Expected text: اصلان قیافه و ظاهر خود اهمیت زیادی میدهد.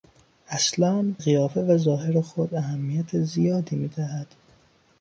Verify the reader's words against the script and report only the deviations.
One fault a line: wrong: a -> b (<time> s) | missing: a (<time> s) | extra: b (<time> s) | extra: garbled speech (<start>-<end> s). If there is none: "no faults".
no faults